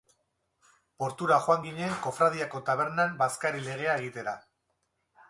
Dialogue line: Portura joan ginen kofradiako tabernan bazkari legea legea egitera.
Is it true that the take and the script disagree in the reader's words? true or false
true